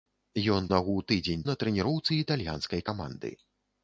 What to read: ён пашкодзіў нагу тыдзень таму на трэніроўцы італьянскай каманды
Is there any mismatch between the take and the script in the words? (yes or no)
yes